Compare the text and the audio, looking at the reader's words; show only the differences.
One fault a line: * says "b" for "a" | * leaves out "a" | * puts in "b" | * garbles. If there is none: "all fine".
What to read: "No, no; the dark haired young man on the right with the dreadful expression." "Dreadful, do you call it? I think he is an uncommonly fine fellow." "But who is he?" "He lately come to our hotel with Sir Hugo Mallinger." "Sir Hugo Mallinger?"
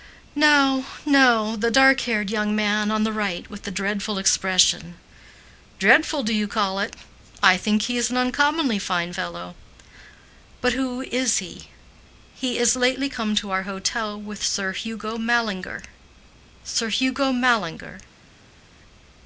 * puts in "is"